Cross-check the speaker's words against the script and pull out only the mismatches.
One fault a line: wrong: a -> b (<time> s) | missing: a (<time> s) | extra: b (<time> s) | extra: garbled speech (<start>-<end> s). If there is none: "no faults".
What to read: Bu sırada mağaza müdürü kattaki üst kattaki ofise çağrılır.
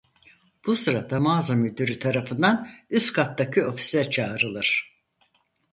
wrong: kattaki -> tarafından (2.0 s)